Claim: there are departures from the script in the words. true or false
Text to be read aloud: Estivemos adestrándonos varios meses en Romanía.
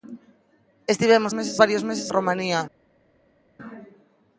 true